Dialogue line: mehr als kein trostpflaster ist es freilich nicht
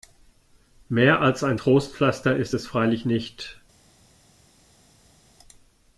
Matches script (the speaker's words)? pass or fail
fail